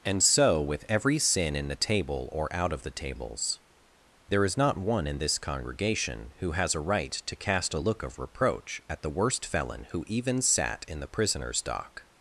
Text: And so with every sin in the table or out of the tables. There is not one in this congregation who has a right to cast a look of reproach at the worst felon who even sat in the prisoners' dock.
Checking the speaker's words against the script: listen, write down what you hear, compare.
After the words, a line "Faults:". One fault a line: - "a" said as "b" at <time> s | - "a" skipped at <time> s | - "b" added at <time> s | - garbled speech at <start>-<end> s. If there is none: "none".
And so with every sin in the table or out of the tables. There is not one in this congregation who has a right to cast a look of reproach at the worst felon who even sat in the prisoners' dock.
Faults:
none